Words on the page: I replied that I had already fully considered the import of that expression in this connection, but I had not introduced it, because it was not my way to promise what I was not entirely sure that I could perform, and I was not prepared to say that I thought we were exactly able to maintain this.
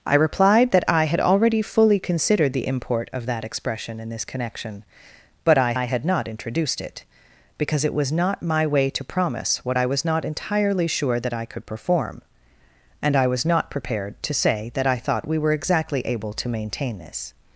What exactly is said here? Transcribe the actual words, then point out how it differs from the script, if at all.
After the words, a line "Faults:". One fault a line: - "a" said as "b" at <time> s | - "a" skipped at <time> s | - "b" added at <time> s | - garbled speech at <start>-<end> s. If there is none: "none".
I replied that I had already fully considered the import of that expression in this connection, but I I had not introduced it, because it was not my way to promise what I was not entirely sure that I could perform, and I was not prepared to say that I thought we were exactly able to maintain this.
Faults:
- "I" added at 5.7 s